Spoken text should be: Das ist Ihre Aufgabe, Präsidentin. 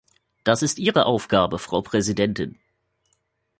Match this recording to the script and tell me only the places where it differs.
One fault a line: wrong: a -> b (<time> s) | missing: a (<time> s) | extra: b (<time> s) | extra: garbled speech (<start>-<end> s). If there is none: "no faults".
extra: Frau (1.6 s)